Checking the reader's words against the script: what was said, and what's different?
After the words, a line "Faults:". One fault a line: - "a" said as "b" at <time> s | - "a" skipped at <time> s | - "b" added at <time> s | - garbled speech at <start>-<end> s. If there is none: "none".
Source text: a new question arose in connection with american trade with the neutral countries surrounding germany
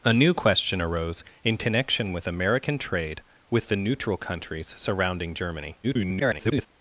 a new question arose in connection with american trade with the neutral countries surrounding germany [garbled]
Faults:
- garbled speech at 5.8-6.7 s